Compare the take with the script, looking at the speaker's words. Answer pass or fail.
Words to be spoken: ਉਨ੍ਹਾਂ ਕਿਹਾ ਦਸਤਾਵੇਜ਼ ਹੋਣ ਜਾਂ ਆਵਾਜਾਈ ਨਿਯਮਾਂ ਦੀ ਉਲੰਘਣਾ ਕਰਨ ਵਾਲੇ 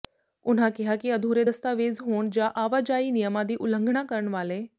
fail